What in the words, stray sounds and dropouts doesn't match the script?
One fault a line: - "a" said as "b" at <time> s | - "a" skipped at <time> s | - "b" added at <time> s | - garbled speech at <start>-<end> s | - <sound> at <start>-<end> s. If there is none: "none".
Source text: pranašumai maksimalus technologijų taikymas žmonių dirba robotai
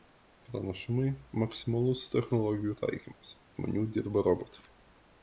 none